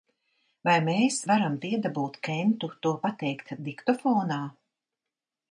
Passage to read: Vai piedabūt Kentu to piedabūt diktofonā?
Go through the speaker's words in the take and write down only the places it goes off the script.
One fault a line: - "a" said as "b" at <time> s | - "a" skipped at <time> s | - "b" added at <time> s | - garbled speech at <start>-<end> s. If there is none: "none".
- "mēs varam" added at 0.8 s
- "piedabūt" said as "pateikt" at 3.1 s